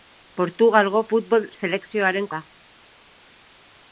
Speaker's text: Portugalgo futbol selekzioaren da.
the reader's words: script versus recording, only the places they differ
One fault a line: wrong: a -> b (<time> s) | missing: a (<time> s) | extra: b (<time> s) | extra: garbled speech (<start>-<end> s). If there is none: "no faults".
no faults